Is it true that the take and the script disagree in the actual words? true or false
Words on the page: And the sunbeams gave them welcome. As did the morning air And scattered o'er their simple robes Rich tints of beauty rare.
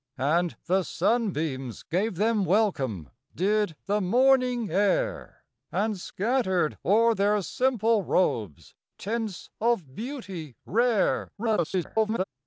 true